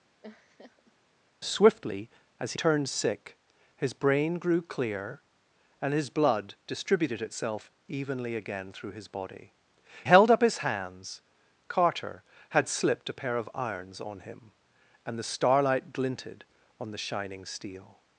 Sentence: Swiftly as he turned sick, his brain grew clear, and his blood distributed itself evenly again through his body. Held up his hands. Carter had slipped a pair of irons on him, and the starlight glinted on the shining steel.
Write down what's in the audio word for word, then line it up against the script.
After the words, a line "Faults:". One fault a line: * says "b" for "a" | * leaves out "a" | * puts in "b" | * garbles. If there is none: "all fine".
Swiftly as he turned sick, his brain grew clear, and his blood distributed itself evenly again through his body. Held up his hands. Carter had slipped a pair of irons on him, and the starlight glinted on the shining steel.
Faults:
all fine